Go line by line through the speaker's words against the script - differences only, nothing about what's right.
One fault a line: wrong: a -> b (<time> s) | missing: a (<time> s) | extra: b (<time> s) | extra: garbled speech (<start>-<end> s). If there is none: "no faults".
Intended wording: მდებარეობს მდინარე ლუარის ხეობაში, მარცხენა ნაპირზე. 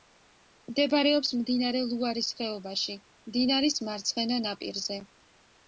extra: მდინარის (3.3 s)